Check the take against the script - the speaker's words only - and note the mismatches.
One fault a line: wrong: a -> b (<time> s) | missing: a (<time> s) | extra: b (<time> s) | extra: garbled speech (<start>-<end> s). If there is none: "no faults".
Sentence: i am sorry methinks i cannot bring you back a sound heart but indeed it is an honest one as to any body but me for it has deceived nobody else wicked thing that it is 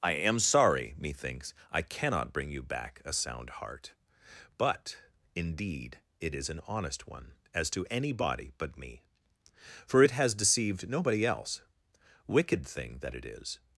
no faults